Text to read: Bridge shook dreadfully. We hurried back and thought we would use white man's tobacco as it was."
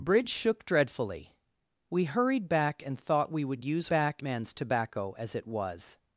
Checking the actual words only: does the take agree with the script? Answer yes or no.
no